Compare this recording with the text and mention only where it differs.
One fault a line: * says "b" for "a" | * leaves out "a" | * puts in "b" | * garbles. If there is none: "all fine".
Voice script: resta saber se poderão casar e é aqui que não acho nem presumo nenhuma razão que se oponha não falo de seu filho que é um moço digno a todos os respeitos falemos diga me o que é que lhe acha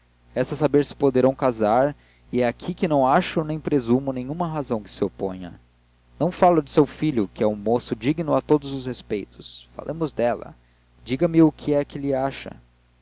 * puts in "dela"